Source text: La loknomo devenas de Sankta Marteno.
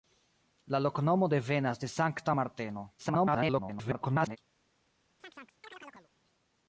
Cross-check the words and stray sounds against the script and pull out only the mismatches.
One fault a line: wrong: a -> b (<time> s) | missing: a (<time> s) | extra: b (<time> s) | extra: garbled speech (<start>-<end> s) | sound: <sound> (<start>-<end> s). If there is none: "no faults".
extra: garbled speech (3.0-4.4 s)
sound: chirp (5.2-6.1 s)